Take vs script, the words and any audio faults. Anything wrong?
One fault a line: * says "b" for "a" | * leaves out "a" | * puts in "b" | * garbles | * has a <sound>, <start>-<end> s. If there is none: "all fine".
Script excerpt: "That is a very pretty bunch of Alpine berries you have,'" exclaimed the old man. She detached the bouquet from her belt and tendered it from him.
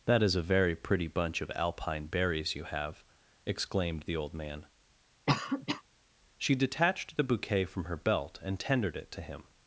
* has a cough, 5.3-5.8 s
* says "to" for "from"